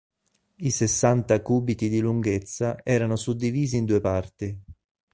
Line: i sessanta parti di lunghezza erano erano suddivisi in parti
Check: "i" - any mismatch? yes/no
no